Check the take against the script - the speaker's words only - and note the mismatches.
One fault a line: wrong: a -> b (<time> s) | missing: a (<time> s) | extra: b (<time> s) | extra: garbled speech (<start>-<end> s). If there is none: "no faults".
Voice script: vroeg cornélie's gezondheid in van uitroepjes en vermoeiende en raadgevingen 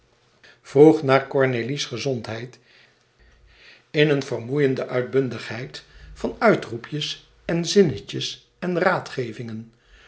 extra: naar (1.0 s)
extra: een vermoeiende uitbundigheid (4.1 s)
wrong: vermoeiende -> zinnetjes (7.7 s)